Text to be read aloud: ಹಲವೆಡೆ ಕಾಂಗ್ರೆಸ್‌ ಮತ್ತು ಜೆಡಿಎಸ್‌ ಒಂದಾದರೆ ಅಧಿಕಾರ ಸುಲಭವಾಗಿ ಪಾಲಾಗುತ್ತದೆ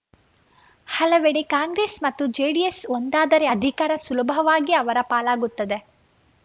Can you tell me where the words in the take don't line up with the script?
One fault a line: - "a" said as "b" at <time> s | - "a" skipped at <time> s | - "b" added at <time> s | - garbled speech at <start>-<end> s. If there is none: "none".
- "ಅವರ" added at 4.7 s